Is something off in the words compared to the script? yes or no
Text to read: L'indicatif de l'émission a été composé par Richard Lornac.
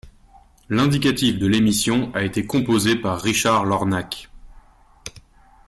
no